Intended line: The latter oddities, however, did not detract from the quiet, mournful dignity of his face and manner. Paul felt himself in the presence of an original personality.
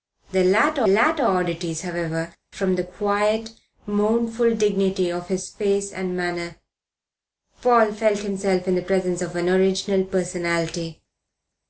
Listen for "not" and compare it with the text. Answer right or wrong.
wrong